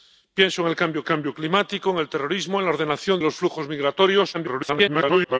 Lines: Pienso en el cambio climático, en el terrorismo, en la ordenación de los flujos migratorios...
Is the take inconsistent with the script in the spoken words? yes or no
yes